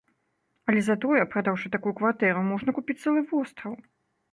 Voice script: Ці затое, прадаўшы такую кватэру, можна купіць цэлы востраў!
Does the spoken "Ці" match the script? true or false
false